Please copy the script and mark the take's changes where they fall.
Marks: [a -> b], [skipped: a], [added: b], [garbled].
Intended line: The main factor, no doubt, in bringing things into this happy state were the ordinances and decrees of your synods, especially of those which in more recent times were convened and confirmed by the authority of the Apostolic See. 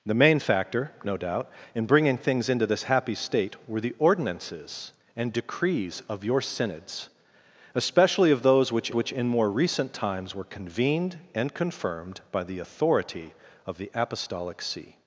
The main factor, no doubt, in bringing things into this happy state were the ordinances and decrees of your synods, especially of those which [added: which] in more recent times were convened and confirmed by the authority of the Apostolic See.